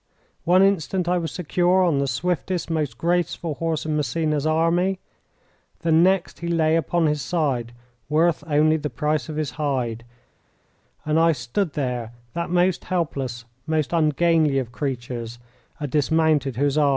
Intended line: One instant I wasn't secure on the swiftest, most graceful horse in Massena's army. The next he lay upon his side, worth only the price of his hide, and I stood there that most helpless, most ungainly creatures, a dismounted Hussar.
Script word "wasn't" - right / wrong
wrong